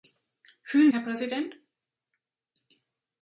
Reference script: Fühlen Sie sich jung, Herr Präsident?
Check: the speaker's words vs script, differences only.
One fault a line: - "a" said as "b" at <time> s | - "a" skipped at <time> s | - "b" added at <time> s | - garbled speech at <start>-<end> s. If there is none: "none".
- "Sie sich jung" skipped at 0.9 s